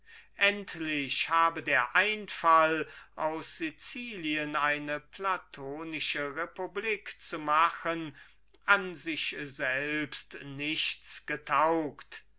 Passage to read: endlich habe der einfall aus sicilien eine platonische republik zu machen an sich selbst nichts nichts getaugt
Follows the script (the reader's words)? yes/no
no